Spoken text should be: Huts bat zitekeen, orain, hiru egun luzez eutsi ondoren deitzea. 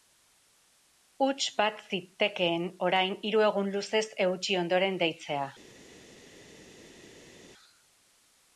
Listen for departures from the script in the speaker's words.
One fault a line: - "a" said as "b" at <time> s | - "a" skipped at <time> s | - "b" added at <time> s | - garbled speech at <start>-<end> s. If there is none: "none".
none